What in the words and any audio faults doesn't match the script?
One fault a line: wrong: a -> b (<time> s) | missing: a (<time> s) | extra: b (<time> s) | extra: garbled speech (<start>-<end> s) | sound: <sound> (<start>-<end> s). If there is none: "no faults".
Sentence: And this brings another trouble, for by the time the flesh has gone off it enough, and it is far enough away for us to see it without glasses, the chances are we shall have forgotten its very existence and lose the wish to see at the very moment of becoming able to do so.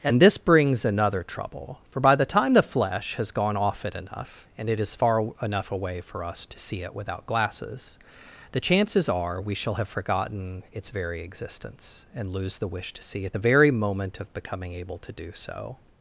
no faults